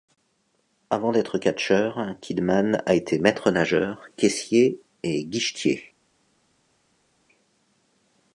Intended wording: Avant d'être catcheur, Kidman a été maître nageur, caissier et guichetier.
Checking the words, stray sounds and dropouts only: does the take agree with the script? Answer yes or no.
yes